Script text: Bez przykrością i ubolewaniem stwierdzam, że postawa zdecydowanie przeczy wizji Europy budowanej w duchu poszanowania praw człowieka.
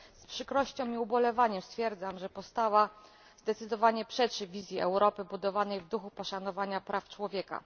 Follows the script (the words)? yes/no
no